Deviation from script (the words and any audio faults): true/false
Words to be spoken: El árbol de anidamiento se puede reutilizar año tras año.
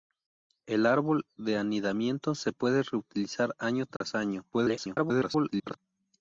true